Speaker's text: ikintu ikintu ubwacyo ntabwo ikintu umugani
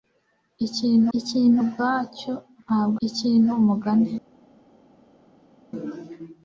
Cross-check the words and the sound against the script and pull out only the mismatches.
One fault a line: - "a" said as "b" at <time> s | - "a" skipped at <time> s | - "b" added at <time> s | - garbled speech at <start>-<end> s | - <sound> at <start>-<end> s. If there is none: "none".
none